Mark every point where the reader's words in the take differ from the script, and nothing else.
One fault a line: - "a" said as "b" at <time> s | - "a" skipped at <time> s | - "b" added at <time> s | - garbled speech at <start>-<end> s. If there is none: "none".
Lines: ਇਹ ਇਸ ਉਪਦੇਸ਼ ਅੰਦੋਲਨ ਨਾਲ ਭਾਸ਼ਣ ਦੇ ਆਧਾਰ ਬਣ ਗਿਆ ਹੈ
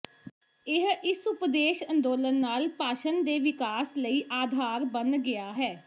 - "ਵਿਕਾਸ ਲਈ" added at 3.4 s